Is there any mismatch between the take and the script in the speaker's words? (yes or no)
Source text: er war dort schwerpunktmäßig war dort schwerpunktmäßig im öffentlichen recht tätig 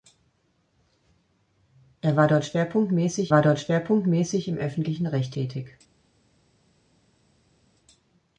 no